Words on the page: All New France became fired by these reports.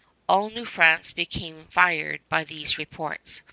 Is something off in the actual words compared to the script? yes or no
no